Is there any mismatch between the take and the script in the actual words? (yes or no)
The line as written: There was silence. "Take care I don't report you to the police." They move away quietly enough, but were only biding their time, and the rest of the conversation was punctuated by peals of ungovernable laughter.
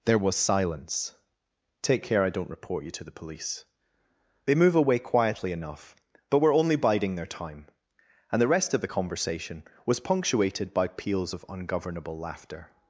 no